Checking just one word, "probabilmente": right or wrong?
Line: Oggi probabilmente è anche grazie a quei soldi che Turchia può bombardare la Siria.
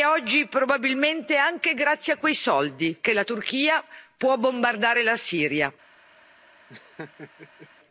right